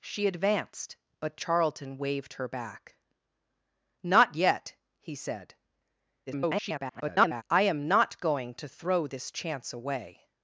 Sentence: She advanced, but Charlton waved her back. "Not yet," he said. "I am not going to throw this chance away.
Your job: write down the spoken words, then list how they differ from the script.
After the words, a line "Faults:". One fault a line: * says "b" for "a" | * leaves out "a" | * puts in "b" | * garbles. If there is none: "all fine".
She advanced, but Charlton waved her back. "Not yet," he said. [garbled] "I am not going to throw this chance away.
Faults:
* garbles